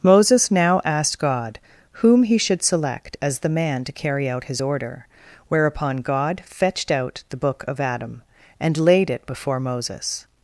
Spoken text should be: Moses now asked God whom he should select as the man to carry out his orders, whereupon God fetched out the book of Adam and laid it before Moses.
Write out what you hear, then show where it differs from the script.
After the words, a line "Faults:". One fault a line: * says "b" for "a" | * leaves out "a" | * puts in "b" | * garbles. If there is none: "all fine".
Moses now asked God whom he should select as the man to carry out his order, whereupon God fetched out the book of Adam and laid it before Moses.
Faults:
* says "order" for "orders"